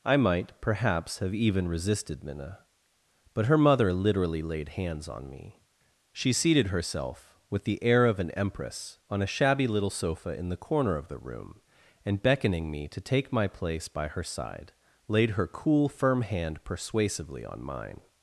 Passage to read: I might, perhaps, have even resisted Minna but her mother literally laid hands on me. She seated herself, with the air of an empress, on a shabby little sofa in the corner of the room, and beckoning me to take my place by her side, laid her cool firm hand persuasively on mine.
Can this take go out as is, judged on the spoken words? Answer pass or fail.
pass